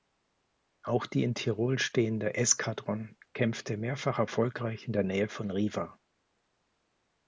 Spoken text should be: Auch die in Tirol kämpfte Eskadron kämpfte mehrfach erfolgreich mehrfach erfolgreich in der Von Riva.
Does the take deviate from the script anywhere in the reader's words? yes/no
yes